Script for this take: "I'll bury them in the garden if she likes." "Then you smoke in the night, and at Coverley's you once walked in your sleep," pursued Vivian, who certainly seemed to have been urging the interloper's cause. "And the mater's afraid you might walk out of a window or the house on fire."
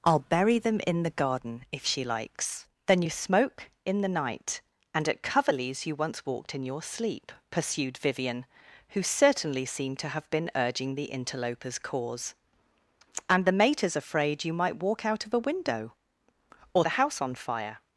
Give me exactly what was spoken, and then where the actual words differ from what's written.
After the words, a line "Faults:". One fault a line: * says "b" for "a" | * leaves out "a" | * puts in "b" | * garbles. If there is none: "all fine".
"I'll bury them in the garden if she likes." "Then you smoke in the night, and at Coverley's you once walked in your sleep," pursued Vivian, who certainly seemed to have been urging the interloper's cause. "And the mater's afraid you might walk out of a window or the house on fire."
Faults:
all fine